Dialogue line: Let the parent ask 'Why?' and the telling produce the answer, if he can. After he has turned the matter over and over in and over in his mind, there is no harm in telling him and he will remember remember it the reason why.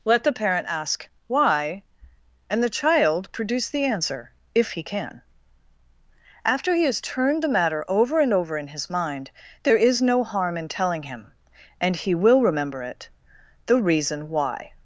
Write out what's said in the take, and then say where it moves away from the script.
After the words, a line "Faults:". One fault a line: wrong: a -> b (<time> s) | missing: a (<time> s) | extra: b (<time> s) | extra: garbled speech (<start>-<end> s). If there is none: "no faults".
Let the parent ask 'Why?' and the child produce the answer, if he can. After he has turned the matter over and over in his mind, there is no harm in telling him and he will remember it the reason why.
Faults:
wrong: telling -> child (2.7 s)
missing: and over in (8.7 s)
missing: remember (12.8 s)